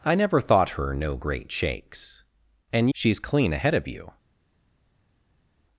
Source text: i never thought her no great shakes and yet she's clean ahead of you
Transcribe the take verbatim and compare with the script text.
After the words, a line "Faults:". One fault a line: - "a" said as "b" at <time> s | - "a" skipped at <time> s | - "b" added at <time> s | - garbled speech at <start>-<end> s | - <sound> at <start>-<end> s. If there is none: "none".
i never thought her no great shakes and she's clean ahead of you
Faults:
- "yet" skipped at 2.9 s